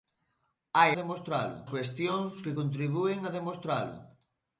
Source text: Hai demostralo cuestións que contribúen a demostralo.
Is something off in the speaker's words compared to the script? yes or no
no